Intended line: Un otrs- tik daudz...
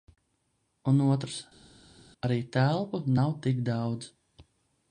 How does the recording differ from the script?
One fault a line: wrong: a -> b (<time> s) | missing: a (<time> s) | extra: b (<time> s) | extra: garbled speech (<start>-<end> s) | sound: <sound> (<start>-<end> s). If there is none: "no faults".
extra: arī telpu nav (2.3 s)